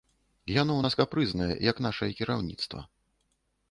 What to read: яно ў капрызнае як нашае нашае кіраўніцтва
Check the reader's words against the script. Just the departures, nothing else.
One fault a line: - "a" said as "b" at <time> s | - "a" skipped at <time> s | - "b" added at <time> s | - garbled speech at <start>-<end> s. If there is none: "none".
- "нас" added at 0.8 s
- "нашае" skipped at 2.1 s